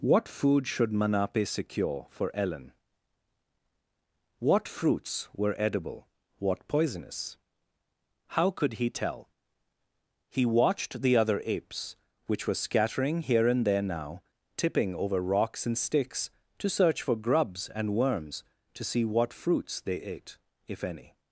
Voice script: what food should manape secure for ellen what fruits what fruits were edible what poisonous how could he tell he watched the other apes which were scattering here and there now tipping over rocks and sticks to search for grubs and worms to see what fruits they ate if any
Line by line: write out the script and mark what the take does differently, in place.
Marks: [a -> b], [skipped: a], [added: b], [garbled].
what food should manape secure for ellen what fruits [skipped: what fruits] were edible what poisonous how could he tell he watched the other apes which were scattering here and there now tipping over rocks and sticks to search for grubs and worms to see what fruits they ate if any